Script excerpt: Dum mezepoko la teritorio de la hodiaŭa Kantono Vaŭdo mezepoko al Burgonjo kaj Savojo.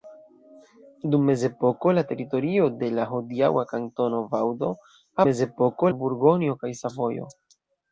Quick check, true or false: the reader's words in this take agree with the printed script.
true